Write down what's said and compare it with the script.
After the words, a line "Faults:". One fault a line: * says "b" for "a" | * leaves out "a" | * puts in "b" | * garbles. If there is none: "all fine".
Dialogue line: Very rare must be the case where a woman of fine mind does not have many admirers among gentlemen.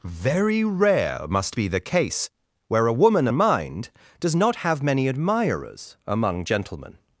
Very rare must be the case where a woman mind does not have many admirers among gentlemen.
Faults:
* leaves out "of fine"